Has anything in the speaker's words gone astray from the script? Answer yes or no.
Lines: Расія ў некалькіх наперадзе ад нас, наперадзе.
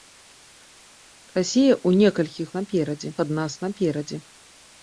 no